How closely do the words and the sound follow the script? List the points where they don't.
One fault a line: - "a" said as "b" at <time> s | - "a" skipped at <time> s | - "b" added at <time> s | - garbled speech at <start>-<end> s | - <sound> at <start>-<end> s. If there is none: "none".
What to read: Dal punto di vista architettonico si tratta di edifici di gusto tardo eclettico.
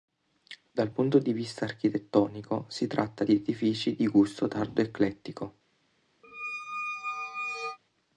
- squeak at 6.2-7.8 s